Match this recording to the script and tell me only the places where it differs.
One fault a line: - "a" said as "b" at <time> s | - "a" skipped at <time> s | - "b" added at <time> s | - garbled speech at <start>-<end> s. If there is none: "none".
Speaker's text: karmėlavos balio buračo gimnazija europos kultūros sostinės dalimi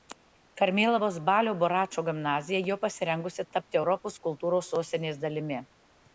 - "jau pasirengusi tapti" added at 2.7 s